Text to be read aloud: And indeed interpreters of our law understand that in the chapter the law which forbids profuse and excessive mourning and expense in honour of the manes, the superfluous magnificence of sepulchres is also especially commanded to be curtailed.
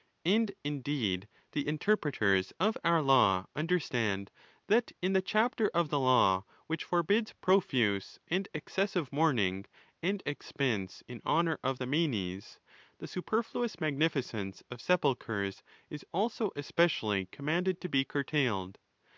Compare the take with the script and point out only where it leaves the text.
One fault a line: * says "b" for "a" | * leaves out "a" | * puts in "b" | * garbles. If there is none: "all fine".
* puts in "the"
* puts in "of"